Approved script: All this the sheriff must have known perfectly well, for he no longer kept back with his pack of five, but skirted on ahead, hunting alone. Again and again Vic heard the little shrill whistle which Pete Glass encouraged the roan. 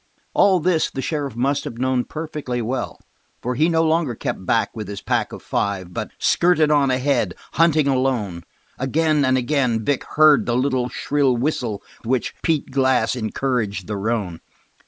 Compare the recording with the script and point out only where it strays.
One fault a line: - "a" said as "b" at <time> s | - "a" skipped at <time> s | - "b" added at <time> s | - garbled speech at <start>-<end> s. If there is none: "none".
none